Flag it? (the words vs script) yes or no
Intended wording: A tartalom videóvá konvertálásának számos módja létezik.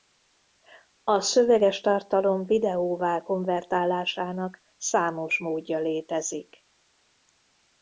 yes